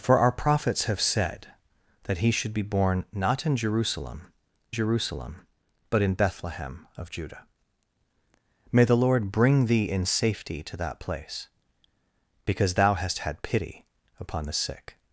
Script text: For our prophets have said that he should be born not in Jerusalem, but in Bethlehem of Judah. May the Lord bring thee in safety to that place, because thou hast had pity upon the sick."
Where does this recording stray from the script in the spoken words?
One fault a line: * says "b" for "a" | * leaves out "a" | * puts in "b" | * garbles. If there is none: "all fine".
* puts in "Jerusalem"